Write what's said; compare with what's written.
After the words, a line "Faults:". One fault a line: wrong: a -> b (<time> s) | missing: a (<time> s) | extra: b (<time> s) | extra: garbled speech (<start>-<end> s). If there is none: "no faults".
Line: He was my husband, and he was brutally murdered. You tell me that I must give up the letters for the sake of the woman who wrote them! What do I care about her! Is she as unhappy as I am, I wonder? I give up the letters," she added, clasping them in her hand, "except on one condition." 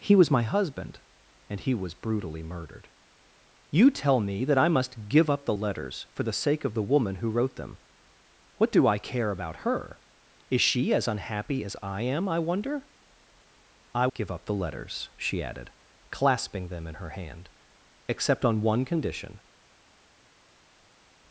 He was my husband, and he was brutally murdered. You tell me that I must give up the letters for the sake of the woman who wrote them! What do I care about her! Is she as unhappy as I am, I wonder? I give up the letters," she added, clasping them in her hand, "except on one condition."
Faults:
no faults